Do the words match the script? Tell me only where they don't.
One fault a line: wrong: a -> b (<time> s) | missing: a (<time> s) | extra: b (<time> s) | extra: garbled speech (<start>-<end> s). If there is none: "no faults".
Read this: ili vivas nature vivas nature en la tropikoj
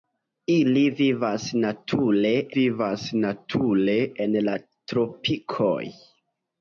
no faults